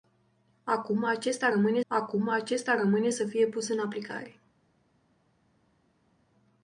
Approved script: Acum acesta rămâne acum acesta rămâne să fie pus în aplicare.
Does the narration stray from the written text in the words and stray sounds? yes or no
no